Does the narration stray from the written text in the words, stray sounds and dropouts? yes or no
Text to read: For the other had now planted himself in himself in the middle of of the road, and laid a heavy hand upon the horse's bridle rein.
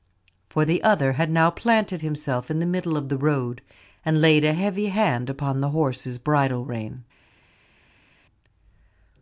yes